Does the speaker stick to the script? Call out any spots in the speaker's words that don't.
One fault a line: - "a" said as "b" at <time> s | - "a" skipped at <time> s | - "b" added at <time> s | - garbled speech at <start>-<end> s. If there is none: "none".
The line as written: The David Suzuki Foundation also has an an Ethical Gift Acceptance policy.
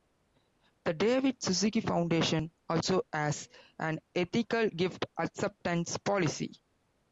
- "an" skipped at 4.0 s